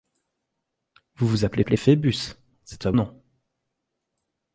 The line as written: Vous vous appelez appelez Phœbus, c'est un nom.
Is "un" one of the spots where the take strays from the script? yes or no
no